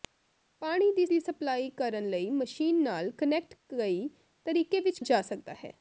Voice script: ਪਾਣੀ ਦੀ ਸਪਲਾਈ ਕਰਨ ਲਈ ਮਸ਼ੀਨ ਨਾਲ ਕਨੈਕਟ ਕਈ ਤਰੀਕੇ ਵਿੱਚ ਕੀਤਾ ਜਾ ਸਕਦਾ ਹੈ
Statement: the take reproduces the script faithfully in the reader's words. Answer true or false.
false